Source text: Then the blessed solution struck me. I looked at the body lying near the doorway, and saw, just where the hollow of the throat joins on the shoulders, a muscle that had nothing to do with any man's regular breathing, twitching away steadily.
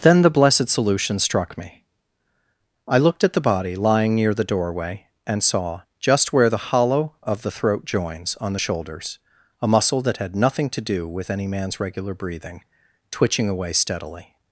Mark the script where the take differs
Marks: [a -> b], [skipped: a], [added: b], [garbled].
Then the blessed solution struck me. I looked at the body lying near the doorway, and saw, just where the hollow of the throat joins on the shoulders, a muscle that had nothing to do with any man's regular breathing, twitching away steadily.